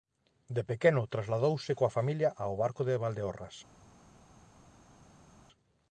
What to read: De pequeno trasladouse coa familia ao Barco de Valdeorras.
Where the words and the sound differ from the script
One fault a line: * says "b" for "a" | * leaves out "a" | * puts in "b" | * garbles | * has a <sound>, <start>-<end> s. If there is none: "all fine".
all fine